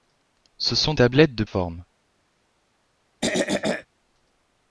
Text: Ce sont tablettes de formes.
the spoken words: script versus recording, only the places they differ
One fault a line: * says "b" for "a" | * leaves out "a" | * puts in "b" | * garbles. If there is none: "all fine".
all fine